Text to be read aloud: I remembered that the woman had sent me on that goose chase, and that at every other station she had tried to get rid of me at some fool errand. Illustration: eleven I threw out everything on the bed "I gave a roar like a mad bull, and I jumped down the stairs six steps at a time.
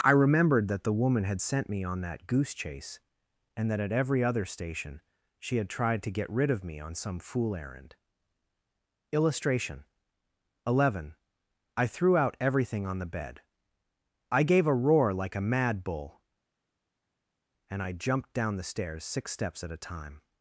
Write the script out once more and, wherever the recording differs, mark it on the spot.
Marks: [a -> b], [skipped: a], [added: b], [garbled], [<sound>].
I remembered that the woman had sent me on that goose chase, and that at every other station she had tried to get rid of me [at -> on] some fool errand. Illustration: eleven I threw out everything on the bed "I gave a roar like a mad bull, and I jumped down the stairs six steps at a time.